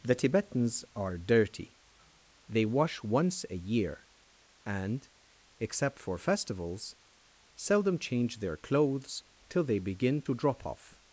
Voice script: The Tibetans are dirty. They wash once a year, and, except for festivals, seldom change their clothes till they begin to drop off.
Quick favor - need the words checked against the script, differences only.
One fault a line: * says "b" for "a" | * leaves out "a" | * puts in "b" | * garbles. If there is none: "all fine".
all fine